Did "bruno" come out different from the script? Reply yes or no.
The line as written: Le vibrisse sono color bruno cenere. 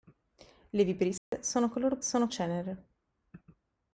yes